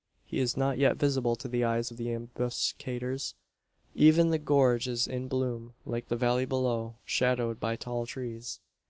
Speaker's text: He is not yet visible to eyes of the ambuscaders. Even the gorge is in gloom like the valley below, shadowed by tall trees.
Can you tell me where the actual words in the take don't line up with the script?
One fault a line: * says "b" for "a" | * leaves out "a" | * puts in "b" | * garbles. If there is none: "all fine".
* puts in "the"